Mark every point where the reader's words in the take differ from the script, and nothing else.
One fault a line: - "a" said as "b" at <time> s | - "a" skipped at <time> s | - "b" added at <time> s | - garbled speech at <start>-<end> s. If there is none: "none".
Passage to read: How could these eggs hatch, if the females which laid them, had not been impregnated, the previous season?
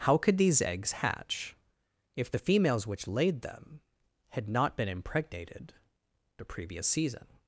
none